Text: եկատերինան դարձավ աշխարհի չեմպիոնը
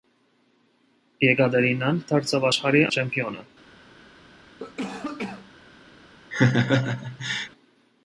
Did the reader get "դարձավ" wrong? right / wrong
right